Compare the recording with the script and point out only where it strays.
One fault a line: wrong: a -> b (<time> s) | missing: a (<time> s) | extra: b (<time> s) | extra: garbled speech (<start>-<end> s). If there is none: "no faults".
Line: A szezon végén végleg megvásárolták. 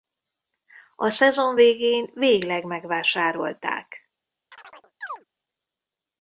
no faults